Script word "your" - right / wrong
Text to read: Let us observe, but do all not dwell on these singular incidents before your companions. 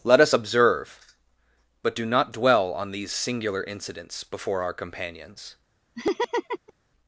wrong